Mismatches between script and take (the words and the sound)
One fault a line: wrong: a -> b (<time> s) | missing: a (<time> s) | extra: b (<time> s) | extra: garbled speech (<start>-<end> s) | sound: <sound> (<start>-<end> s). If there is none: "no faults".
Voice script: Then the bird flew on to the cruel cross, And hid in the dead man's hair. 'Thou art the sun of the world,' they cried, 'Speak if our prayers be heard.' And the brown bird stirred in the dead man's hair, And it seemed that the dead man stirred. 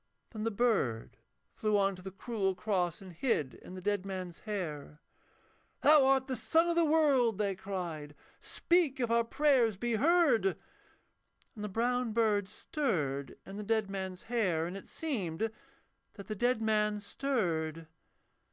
no faults